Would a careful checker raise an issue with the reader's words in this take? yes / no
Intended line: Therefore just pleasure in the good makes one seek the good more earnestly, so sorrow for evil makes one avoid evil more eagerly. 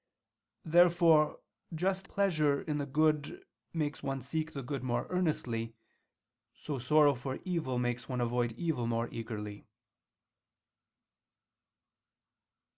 no